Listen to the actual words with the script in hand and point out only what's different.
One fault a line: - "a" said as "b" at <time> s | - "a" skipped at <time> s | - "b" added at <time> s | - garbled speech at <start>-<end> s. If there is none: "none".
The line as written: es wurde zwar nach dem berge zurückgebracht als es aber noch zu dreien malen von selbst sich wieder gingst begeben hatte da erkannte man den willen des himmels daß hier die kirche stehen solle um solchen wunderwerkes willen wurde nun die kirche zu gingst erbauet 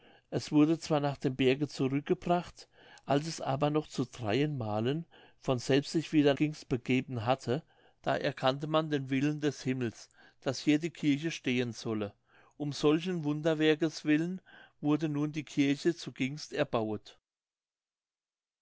none